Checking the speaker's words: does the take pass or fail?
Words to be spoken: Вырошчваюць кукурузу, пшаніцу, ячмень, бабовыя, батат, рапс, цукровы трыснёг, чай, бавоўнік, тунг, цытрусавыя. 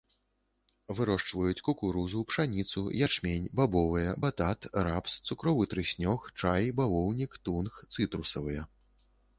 pass